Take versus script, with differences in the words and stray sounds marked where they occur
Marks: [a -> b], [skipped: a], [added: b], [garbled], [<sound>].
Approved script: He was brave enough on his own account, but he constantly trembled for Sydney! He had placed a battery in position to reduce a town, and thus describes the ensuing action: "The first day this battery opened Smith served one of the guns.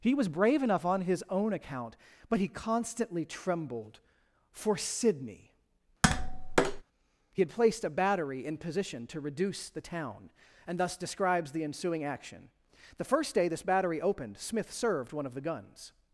He was brave enough on his own account, but he constantly trembled for Sydney! [tap] He had placed a battery in position to reduce [a -> the] town, and thus describes the ensuing action: "The first day this battery opened Smith served one of the guns.